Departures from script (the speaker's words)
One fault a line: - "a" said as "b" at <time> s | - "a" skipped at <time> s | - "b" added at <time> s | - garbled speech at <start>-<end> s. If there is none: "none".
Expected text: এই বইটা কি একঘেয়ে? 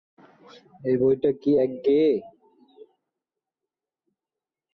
none